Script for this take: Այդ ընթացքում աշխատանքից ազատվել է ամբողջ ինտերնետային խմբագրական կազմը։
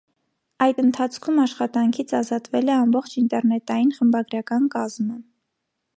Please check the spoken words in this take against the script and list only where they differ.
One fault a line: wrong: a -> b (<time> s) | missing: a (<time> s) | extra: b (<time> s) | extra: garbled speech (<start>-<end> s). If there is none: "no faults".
no faults